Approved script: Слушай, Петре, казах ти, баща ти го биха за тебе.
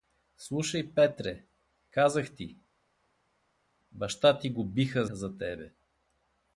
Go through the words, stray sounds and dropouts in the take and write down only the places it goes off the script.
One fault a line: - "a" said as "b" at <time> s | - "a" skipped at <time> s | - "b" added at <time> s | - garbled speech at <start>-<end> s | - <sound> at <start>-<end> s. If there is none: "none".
none